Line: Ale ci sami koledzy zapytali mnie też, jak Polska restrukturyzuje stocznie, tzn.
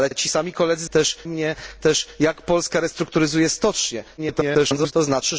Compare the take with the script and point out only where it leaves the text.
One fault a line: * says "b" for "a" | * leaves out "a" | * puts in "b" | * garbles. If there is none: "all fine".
* puts in "ale"
* says "też" for "zapytali"
* garbles